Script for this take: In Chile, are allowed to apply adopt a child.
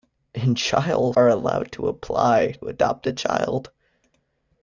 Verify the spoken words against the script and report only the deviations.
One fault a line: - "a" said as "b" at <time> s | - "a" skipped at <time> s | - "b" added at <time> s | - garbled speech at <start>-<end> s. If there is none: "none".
none